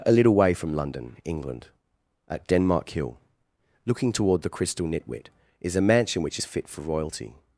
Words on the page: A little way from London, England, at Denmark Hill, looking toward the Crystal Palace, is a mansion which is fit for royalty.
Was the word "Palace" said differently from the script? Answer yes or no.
yes